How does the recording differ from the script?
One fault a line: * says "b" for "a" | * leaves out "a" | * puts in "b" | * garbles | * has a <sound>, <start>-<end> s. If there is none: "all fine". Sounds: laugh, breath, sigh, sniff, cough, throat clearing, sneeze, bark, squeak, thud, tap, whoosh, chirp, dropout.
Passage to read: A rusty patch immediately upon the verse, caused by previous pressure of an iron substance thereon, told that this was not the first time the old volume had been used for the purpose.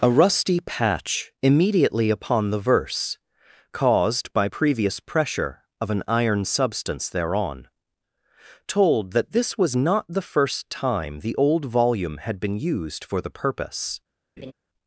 * has a laugh, 14.4-14.5 s